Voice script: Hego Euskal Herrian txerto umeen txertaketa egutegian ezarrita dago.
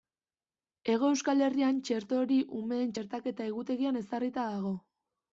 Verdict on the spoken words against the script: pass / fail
fail